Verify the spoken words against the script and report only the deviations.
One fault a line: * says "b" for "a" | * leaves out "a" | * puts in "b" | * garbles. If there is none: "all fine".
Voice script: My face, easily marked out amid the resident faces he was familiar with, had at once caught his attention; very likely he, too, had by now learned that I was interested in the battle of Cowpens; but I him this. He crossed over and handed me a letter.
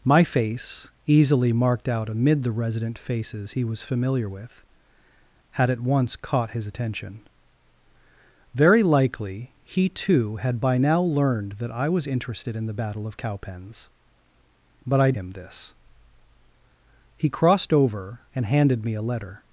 all fine